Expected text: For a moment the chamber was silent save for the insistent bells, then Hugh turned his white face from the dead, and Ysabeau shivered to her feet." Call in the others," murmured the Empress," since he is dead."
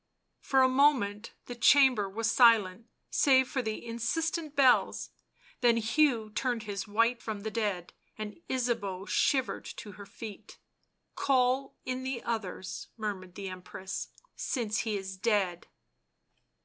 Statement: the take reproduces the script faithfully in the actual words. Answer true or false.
false